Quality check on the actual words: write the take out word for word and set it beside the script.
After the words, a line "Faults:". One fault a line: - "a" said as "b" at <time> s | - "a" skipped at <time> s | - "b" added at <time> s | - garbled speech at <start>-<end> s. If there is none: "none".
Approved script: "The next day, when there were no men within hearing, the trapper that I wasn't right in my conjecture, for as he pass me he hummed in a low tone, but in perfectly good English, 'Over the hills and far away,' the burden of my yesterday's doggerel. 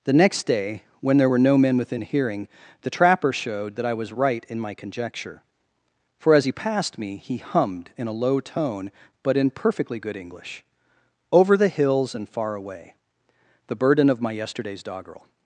"The next day, when there were no men within hearing, the trapper showed that I was right in my conjecture, for as he passed me he hummed in a low tone, but in perfectly good English, 'Over the hills and far away,' the burden of my yesterday's doggerel.
Faults:
- "showed" added at 3.3 s
- "wasn't" said as "was" at 3.9 s
- "pass" said as "passed" at 6.5 s